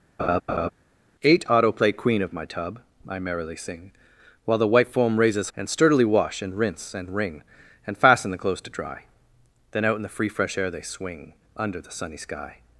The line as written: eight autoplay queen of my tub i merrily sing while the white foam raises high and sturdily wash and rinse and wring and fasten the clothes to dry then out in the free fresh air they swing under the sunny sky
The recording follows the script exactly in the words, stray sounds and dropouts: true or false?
false